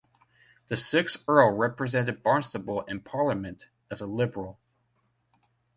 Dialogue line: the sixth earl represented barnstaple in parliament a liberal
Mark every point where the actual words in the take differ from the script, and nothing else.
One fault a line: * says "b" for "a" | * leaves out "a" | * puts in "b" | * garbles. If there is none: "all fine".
* puts in "as"